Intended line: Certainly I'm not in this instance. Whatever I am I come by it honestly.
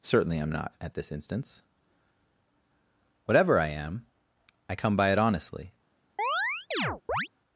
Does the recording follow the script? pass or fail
fail